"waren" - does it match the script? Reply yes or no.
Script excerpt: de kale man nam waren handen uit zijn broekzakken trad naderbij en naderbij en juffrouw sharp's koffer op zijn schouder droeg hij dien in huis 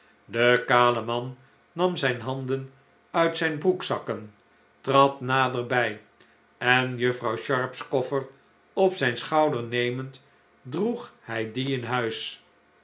no